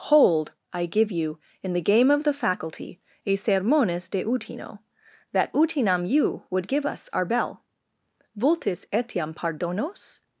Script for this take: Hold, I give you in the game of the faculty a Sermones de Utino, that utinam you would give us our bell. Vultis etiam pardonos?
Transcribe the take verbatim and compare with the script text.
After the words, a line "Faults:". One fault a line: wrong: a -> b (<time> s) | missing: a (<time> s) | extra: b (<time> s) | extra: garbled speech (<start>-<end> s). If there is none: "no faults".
Hold, I give you in the game of the faculty a Sermones de Utino, that utinam you would give us our bell. Vultis etiam pardonos?
Faults:
no faults